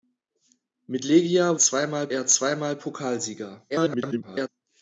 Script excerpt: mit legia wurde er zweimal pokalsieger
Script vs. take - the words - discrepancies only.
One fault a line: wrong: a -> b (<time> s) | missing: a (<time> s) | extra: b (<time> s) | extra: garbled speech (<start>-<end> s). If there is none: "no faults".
wrong: wurde -> zweimal (1.6 s)
extra: garbled speech (3.7-4.5 s)